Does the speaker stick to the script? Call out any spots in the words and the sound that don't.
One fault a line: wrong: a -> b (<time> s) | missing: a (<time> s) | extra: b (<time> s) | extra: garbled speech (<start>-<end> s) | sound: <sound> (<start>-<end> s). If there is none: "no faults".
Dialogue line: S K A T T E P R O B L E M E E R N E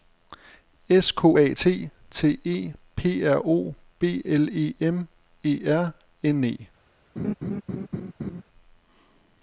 missing: E (5.7 s)
sound: laugh (7.2-8.4 s)